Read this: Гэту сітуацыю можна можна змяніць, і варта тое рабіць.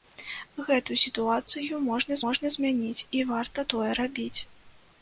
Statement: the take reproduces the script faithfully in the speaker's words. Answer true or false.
true